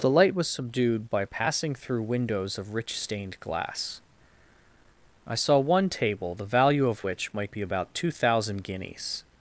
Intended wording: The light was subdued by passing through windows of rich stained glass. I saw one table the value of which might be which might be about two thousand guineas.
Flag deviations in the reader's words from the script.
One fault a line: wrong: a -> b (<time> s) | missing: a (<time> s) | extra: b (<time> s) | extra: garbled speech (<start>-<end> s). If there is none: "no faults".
missing: which might be (7.6 s)